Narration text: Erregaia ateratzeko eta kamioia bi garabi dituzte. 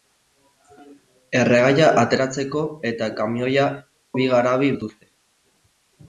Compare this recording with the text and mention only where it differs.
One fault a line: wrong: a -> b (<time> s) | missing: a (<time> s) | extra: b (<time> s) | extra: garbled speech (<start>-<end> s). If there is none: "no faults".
no faults